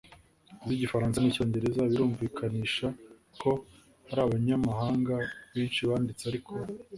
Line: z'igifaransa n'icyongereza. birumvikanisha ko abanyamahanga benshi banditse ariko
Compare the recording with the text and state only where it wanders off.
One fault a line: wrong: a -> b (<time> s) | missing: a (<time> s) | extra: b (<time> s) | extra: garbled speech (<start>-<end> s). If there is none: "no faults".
extra: hari (4.1 s)